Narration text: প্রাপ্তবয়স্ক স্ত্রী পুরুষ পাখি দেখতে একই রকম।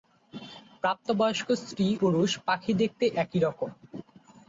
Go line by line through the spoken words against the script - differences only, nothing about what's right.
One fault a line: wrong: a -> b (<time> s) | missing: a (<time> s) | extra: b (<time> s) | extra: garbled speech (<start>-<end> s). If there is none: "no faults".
no faults